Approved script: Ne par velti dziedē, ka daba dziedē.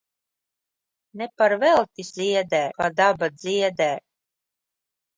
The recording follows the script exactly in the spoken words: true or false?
true